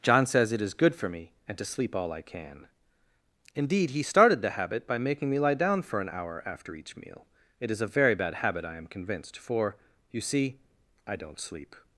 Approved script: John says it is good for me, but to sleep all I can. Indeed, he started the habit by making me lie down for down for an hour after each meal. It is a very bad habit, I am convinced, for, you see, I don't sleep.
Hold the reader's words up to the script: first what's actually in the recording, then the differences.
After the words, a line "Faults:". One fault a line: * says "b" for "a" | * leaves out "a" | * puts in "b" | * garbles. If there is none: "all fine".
John says it is good for me, and to sleep all I can. Indeed, he started the habit by making me lie down for an hour after each meal. It is a very bad habit, I am convinced, for, you see, I don't sleep.
Faults:
* says "and" for "but"
* leaves out "down for"